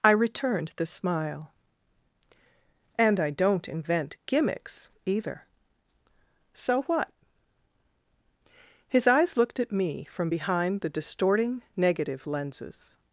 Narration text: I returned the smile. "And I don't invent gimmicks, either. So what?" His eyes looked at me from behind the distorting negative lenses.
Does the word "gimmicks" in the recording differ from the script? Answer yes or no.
no